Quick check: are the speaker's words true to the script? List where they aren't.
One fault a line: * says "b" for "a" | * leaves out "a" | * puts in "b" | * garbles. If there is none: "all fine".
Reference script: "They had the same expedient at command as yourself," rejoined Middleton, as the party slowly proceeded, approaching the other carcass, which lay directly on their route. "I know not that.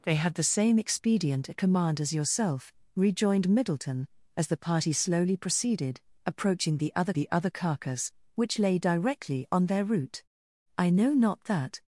* puts in "the other"